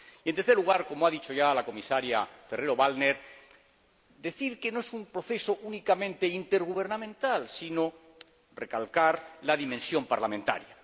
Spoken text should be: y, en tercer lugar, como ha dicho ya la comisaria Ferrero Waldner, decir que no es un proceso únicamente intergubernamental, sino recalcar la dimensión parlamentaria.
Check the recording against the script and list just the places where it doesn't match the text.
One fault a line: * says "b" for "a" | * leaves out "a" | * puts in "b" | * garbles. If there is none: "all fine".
all fine